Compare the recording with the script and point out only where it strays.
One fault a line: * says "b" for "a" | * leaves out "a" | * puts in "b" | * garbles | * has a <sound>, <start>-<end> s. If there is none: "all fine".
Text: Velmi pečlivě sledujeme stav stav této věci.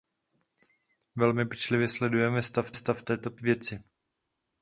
all fine